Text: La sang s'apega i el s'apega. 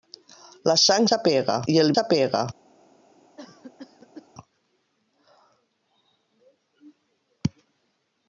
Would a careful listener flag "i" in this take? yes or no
no